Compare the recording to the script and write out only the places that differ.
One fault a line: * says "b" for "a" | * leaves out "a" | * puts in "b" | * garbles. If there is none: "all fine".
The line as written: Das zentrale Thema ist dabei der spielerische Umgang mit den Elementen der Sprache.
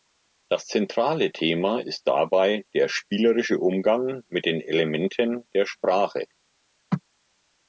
all fine